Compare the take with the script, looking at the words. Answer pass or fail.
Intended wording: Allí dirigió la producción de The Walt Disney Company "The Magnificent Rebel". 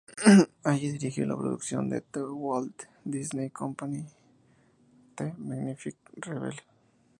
pass